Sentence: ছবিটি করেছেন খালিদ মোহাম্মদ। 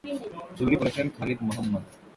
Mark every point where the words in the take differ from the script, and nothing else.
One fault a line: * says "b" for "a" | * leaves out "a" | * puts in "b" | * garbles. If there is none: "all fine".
all fine